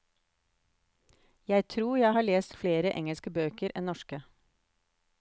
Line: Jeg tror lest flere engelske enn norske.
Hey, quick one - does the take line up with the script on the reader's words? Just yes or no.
no